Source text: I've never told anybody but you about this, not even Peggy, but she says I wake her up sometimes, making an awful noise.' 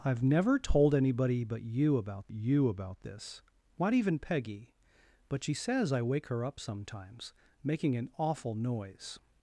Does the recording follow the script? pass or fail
fail